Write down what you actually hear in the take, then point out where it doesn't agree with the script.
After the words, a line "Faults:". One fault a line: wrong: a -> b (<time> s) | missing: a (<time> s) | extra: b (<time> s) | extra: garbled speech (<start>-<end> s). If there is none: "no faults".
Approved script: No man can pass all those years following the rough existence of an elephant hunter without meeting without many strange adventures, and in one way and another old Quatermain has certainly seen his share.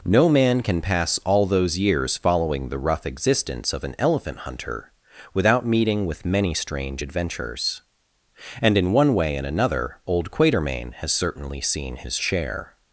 No man can pass all those years following the rough existence of an elephant hunter without meeting with many strange adventures, and in one way and another old Quatermain has certainly seen his share.
Faults:
wrong: without -> with (6.0 s)